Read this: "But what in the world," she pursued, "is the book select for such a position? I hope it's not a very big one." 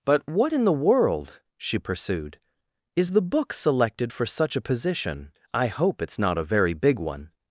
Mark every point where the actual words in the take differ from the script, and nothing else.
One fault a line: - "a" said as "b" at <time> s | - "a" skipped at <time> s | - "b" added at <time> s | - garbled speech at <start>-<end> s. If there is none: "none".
- "select" said as "selected" at 3.5 s